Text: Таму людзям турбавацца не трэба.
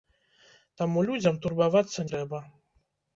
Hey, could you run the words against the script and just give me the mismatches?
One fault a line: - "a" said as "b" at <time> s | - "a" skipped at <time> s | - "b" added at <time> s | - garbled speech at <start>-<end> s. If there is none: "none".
- "не" skipped at 2.1 s